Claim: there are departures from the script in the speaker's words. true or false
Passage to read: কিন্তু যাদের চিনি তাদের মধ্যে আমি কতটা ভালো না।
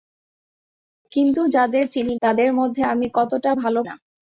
false